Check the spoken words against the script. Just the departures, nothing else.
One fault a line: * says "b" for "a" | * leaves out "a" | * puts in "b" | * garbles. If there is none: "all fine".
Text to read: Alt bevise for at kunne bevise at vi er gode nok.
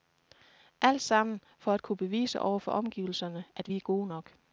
* says "sammen" for "bevise"
* puts in "over for omgivelserne"